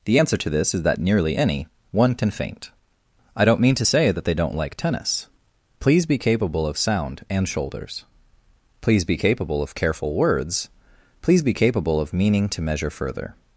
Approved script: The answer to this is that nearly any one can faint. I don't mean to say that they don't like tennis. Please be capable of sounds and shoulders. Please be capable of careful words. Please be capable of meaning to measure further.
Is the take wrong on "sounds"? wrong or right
wrong